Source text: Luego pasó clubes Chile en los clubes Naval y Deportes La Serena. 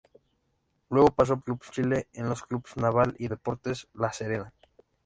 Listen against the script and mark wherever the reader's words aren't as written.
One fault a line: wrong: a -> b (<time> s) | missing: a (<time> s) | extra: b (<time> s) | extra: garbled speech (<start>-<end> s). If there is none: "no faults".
no faults